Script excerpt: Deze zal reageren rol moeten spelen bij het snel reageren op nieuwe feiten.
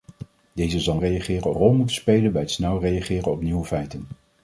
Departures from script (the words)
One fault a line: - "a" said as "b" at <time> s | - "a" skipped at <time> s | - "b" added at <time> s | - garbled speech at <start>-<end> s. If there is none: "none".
none